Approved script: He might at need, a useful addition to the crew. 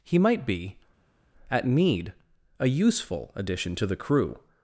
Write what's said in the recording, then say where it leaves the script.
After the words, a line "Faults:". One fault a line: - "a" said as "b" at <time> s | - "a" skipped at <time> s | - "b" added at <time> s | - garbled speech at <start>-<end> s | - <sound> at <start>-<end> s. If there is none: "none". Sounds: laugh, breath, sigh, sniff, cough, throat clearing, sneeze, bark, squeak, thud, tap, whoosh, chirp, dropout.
He might be, at need, a useful addition to the crew.
Faults:
- "be" added at 0.5 s